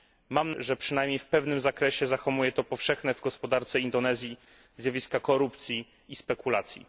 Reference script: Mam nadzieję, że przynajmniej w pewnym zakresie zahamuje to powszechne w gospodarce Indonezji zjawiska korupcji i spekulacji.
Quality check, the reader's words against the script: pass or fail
fail